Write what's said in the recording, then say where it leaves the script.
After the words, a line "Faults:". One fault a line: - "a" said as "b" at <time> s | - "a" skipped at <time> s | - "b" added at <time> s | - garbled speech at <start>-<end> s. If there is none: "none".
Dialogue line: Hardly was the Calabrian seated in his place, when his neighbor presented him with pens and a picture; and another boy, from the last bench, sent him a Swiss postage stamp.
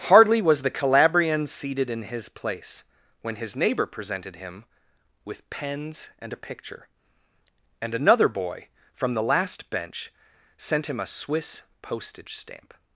Hardly was the Calabrian seated in his place, when his neighbor presented him with pens and a picture; and another boy, from the last bench, sent him a Swiss postage stamp.
Faults:
none